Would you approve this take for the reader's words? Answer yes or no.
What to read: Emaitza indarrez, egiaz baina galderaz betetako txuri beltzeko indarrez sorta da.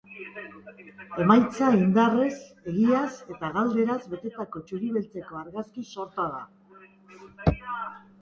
no